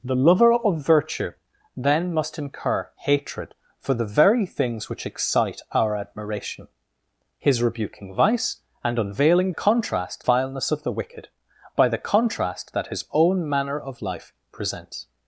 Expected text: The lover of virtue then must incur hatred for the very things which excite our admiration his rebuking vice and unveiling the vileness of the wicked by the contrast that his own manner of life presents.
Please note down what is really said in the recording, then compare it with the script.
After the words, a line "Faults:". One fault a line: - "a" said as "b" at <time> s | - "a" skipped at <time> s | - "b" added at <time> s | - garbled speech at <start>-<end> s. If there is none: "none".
The lover of virtue then must incur hatred for the very things which excite our admiration his rebuking vice and unveiling contrast vileness of the wicked by the contrast that his own manner of life presents.
Faults:
- "the" said as "contrast" at 9.5 s